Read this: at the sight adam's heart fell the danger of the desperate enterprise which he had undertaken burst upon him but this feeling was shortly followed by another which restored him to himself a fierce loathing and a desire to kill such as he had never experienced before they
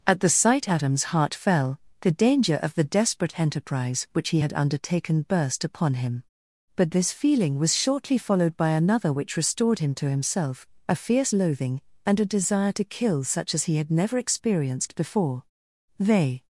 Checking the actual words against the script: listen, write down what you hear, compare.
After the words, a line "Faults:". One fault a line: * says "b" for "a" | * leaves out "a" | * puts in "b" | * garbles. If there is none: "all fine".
at the sight adam's heart fell the danger of the desperate enterprise which he had undertaken burst upon him but this feeling was shortly followed by another which restored him to himself a fierce loathing and a desire to kill such as he had never experienced before they
Faults:
all fine